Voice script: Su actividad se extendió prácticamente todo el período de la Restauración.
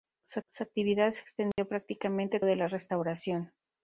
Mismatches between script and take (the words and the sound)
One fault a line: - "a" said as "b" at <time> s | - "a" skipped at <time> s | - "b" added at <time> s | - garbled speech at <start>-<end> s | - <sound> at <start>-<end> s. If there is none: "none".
- "su" added at 0.5 s
- dropout at 1.5-1.6 s
- "todo el período" skipped at 2.4 s